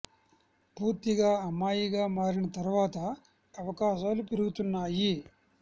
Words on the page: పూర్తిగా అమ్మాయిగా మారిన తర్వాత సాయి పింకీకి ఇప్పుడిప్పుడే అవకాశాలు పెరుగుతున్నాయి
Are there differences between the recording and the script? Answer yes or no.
yes